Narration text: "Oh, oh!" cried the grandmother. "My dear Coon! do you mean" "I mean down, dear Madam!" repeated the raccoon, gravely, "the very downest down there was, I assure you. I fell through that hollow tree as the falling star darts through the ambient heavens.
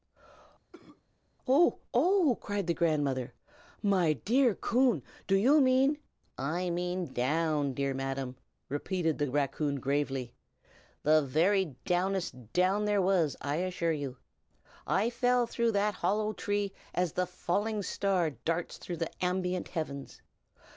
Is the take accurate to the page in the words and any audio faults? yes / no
no